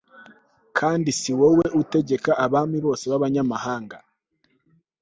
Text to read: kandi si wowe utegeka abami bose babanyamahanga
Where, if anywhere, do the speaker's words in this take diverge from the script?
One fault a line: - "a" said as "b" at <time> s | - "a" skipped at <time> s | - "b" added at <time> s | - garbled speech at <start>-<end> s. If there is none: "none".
none